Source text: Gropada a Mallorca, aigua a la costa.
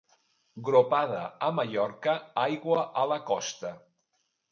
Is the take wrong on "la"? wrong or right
right